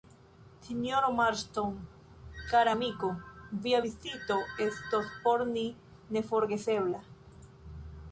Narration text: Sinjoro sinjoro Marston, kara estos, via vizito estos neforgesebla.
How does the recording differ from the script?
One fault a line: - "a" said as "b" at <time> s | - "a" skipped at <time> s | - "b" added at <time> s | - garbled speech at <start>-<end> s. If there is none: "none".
- "sinjoro" skipped at 1.1 s
- "estos" said as "amiko" at 2.7 s
- "por ni" added at 5.2 s